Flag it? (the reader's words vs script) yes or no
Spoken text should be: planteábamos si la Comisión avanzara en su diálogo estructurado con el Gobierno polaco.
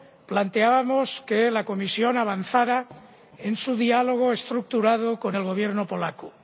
yes